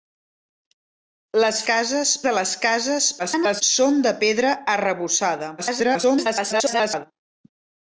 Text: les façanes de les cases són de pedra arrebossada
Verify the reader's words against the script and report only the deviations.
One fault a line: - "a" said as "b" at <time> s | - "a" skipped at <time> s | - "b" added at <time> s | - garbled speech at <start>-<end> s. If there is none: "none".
- "façanes" said as "cases" at 1.7 s
- garbled speech at 3.2-3.6 s
- garbled speech at 5.6-7.1 s